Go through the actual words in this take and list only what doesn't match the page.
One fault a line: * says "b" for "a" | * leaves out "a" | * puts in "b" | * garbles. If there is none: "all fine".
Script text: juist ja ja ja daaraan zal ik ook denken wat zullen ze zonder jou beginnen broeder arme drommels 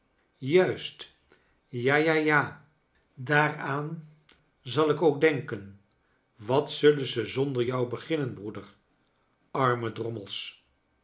all fine